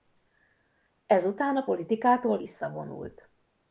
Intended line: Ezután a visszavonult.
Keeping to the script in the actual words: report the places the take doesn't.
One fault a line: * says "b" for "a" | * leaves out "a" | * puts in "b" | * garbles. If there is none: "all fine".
* puts in "politikától"